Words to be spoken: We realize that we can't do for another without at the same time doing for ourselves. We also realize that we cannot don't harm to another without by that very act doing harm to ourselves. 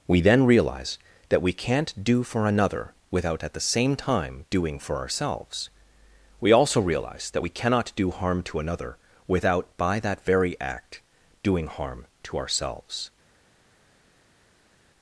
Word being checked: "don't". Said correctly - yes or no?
no